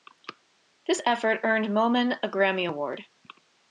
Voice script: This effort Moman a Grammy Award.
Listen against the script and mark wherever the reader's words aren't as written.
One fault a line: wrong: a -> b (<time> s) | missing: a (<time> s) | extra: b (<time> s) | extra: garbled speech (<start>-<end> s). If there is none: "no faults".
extra: earned (1.4 s)